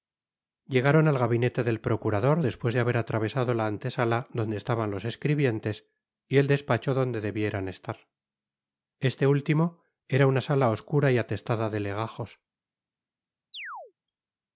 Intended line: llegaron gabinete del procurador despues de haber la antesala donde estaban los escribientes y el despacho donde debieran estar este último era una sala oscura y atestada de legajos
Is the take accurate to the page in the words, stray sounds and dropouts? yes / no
no